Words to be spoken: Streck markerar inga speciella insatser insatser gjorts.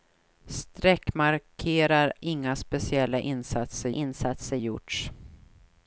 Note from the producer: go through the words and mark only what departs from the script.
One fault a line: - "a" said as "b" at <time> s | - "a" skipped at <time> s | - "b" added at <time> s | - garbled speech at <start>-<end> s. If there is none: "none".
none